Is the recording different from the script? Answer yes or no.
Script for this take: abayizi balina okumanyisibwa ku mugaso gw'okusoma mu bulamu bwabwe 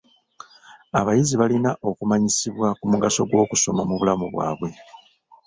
no